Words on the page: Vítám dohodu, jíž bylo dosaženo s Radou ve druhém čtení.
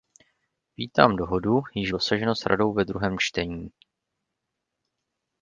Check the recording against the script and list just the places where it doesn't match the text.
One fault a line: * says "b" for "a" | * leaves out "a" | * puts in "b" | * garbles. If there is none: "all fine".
* leaves out "bylo"